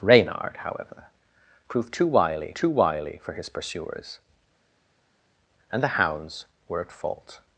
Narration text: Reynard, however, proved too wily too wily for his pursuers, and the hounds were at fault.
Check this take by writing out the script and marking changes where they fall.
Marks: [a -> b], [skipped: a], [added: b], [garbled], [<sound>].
Reynard, however, proved too wily too wily for his pursuers, and the hounds were at fault.